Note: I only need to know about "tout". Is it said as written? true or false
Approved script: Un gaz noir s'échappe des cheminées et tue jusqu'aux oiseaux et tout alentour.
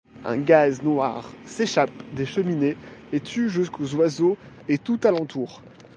true